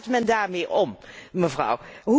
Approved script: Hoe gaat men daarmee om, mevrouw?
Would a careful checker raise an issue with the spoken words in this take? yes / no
no